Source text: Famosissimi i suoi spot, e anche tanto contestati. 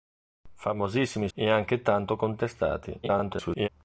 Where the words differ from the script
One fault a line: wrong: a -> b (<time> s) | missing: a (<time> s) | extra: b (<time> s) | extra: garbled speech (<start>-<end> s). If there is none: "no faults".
missing: suoi spot (1.3 s)
extra: garbled speech (3.0-3.7 s)